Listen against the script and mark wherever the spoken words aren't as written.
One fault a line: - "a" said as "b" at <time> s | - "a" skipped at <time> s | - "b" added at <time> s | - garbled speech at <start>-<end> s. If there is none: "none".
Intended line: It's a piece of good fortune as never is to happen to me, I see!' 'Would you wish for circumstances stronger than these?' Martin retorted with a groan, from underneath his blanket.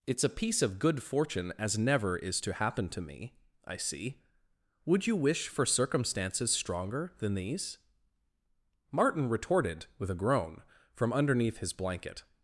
none